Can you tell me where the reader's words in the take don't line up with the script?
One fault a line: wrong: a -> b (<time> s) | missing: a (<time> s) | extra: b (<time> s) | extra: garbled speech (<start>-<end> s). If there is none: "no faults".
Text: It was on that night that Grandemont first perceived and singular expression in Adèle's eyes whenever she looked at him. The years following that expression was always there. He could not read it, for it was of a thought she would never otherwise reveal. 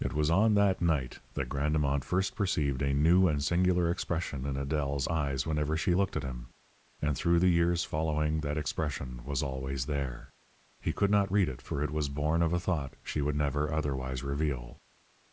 extra: a new (2.8 s)
extra: And through (7.0 s)
extra: born (12.1 s)